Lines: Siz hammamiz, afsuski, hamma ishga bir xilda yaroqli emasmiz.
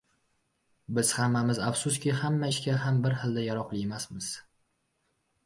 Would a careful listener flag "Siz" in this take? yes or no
yes